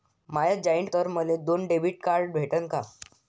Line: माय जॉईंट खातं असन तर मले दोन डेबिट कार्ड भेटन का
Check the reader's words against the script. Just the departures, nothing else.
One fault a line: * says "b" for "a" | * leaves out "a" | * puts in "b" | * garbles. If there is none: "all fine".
* leaves out "खातं असन"